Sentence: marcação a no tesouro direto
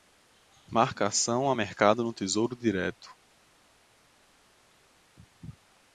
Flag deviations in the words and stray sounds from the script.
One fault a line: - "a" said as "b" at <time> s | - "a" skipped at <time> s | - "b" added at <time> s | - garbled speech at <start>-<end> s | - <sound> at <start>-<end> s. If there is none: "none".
- "mercado" added at 1.5 s